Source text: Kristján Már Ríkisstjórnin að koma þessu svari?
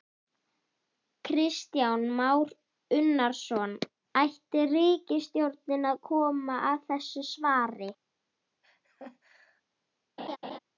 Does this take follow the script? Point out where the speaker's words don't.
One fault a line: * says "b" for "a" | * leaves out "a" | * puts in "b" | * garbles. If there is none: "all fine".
* puts in "Unnarsson Ætti"
* puts in "að"